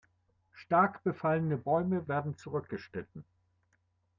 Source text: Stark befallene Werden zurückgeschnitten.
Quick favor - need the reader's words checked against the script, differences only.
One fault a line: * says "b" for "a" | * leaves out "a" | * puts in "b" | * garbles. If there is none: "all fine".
* puts in "Bäume"